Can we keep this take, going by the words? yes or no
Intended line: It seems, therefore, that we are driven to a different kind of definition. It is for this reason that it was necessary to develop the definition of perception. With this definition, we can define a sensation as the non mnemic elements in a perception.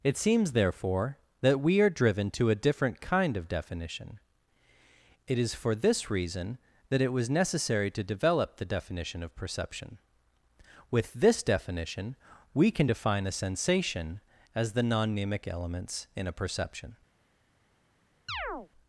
yes